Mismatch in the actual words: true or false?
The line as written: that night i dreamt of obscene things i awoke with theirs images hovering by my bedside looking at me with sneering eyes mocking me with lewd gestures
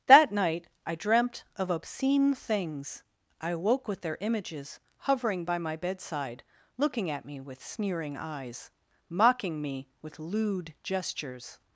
true